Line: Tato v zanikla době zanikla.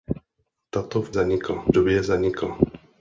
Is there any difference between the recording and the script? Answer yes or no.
no